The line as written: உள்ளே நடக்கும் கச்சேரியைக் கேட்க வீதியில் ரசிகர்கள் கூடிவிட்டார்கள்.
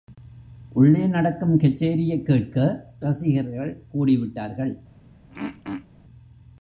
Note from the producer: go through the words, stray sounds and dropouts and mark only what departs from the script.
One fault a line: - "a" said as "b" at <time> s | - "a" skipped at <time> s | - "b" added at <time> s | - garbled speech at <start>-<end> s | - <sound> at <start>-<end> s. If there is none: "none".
- "வீதியில்" skipped at 2.9 s
- throat clearing at 5.3-5.9 s